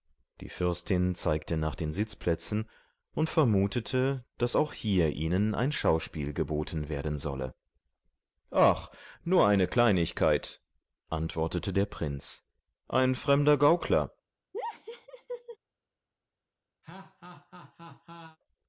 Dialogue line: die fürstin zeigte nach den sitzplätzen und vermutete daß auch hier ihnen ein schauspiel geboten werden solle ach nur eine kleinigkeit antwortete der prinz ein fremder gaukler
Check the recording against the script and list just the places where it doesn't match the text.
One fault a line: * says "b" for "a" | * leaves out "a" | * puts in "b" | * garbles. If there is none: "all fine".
all fine